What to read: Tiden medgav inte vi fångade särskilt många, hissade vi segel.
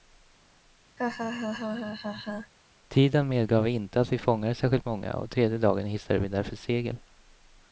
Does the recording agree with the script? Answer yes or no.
no